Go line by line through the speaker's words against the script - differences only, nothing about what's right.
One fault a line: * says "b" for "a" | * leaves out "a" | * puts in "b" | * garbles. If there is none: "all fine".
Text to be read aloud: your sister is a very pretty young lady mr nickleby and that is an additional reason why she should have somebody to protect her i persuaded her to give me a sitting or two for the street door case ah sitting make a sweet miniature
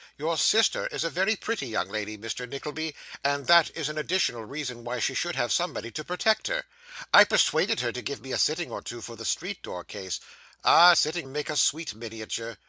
all fine